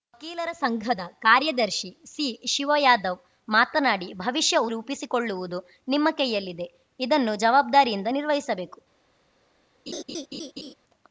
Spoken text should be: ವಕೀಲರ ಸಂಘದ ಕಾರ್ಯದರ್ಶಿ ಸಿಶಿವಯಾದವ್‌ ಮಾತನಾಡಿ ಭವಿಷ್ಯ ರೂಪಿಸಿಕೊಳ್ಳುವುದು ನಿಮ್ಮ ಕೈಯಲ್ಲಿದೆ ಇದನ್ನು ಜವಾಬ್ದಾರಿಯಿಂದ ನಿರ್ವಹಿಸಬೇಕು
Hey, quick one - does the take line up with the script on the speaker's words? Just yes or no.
yes